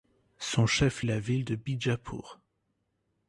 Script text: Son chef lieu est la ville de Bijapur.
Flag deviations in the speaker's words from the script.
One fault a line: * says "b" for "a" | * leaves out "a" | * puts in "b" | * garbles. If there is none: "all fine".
* leaves out "lieu"